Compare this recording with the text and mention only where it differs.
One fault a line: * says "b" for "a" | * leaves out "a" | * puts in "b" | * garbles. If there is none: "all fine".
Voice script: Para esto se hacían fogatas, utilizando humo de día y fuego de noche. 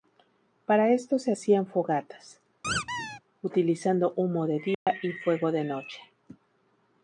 all fine